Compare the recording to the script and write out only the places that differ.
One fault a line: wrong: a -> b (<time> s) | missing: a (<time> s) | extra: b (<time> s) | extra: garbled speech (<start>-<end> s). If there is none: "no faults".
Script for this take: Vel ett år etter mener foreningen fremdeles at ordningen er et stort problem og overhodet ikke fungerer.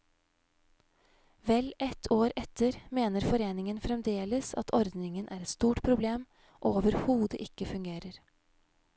no faults